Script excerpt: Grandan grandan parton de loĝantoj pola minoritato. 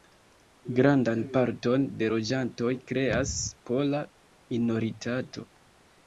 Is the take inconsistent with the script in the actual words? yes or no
yes